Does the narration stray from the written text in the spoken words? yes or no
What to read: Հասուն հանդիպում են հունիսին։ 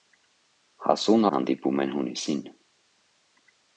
no